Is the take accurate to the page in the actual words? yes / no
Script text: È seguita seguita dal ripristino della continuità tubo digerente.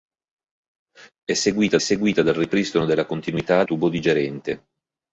yes